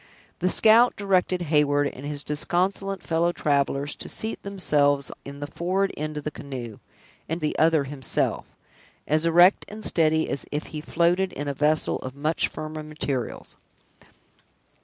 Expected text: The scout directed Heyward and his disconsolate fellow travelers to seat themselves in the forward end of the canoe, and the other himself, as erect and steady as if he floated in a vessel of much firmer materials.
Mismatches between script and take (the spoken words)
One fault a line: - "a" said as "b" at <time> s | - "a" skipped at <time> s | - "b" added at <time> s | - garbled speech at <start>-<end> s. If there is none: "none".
none